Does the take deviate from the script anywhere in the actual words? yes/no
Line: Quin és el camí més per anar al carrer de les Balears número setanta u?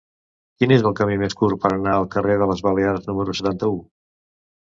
yes